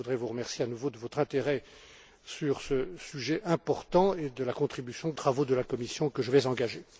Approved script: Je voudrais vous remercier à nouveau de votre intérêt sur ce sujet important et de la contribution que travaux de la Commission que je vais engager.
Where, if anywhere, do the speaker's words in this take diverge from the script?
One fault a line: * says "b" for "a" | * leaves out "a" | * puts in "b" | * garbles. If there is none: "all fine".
all fine